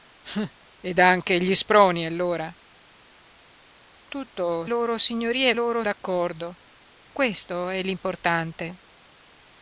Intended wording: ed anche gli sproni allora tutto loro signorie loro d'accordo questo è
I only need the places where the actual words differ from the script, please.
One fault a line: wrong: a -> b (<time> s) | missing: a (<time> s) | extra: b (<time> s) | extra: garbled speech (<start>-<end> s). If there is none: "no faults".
no faults